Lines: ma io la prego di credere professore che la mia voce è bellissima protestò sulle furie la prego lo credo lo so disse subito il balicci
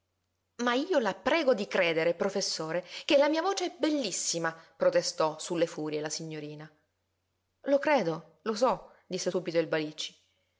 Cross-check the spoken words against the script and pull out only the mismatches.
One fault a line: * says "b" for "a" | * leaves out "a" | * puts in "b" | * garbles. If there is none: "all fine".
* says "signorina" for "prego"